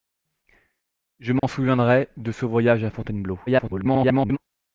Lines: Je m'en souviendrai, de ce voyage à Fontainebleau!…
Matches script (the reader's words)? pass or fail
fail